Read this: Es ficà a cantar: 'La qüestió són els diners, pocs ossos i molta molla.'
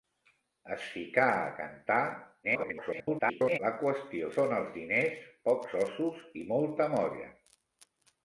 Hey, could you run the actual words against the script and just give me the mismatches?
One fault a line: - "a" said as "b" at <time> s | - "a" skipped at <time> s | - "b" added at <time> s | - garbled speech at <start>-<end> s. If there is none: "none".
- garbled speech at 2.4-3.6 s